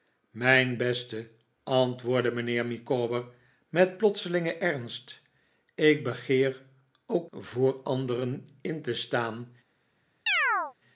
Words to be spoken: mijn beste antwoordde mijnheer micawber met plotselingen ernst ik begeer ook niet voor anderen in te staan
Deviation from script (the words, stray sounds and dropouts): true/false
true